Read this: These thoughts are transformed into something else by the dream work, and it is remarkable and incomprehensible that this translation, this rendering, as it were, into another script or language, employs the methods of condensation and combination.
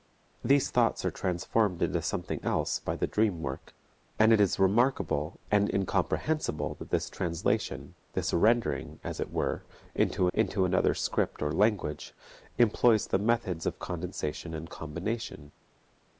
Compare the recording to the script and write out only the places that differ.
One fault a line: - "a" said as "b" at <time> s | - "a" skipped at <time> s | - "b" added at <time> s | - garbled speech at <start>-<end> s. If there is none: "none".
- "into" added at 10.3 s